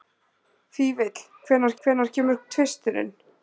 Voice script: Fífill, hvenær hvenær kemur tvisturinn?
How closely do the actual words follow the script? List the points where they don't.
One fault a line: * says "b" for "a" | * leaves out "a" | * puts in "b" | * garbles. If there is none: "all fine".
all fine